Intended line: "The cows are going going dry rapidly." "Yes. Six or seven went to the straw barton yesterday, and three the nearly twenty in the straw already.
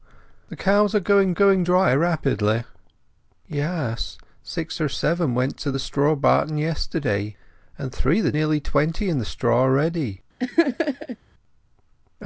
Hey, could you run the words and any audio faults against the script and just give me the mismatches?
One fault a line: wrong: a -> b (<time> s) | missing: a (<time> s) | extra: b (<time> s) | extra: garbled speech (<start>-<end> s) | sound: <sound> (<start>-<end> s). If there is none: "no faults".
sound: laugh (10.4-11.2 s)